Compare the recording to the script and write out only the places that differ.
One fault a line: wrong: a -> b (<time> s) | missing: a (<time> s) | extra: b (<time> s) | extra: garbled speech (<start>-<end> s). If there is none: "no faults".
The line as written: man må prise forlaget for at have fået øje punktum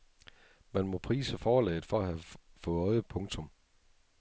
no faults